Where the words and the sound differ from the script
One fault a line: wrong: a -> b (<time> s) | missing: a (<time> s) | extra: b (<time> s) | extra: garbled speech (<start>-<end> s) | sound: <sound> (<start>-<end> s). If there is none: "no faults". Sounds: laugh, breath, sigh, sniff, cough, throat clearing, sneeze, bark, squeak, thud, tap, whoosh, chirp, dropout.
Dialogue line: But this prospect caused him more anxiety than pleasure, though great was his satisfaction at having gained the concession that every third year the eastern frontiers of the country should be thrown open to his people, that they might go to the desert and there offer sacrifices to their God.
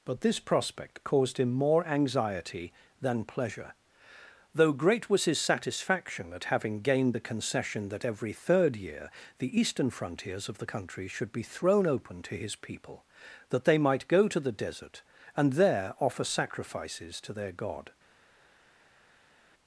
no faults